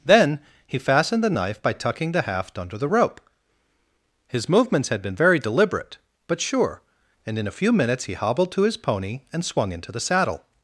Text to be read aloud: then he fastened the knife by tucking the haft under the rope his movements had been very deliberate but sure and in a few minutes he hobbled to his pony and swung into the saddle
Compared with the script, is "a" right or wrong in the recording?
right